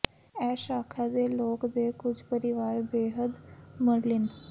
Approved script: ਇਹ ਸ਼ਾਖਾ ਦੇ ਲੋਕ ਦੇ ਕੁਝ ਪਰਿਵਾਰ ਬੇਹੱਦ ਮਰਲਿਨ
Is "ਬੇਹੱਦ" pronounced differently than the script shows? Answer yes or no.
no